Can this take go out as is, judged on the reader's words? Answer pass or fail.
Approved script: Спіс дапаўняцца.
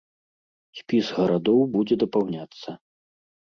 fail